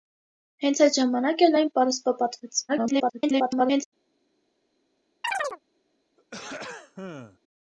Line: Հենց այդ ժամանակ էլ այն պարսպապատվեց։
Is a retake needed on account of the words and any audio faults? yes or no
yes